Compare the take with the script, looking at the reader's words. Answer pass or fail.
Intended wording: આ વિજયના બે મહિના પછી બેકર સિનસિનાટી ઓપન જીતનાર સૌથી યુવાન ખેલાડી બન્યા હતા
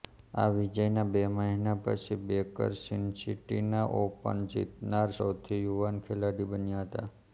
pass